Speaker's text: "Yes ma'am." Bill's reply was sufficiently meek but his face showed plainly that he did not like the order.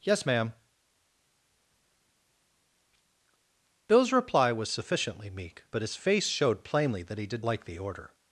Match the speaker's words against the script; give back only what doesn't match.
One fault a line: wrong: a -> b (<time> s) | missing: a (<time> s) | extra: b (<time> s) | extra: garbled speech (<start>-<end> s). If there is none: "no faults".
missing: not (7.5 s)